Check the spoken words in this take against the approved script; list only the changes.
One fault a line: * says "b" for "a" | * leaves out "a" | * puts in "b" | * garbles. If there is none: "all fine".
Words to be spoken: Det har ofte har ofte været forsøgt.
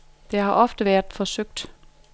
* leaves out "har ofte"